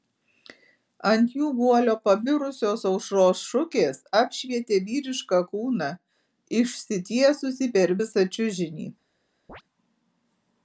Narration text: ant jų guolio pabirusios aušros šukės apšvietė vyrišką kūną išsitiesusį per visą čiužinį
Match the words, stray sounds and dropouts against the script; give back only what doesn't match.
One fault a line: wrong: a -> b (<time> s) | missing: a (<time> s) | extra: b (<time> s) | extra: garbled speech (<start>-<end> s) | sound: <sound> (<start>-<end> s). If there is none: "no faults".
sound: chirp (9.5-9.6 s)